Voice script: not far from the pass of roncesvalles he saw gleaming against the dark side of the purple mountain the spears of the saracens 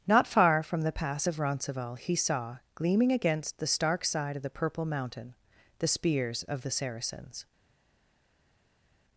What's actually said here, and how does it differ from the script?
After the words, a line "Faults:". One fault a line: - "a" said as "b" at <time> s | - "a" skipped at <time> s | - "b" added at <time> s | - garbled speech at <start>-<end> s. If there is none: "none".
not far from the pass of roncesvalles he saw gleaming against the stark side of the purple mountain the spears of the saracens
Faults:
- "dark" said as "stark" at 3.7 s